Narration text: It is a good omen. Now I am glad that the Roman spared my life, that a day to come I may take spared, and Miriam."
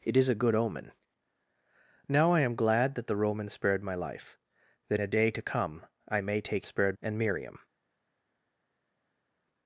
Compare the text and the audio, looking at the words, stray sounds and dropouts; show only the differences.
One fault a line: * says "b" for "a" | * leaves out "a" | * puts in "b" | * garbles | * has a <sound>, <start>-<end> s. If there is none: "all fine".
all fine